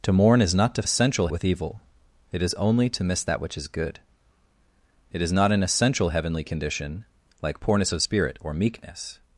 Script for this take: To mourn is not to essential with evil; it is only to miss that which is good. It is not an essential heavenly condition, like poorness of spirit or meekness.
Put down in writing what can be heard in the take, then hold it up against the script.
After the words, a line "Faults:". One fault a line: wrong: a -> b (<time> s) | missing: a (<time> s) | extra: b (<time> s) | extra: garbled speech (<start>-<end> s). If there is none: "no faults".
To mourn is not to essential with evil; it is only to miss that which is good. It is not an essential heavenly condition, like poorness of spirit or meekness.
Faults:
no faults